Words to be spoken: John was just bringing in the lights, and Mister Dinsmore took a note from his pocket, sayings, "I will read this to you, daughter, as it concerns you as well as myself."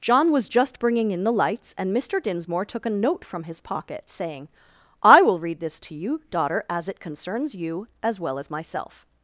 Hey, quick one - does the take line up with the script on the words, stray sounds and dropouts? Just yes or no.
no